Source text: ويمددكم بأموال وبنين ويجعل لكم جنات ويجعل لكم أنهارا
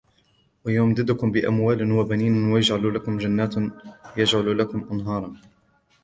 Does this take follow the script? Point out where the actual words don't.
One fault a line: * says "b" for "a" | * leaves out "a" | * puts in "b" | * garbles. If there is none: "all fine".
all fine